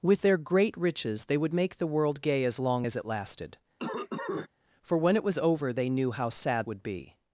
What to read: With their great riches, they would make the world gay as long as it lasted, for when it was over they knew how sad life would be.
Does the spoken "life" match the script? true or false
false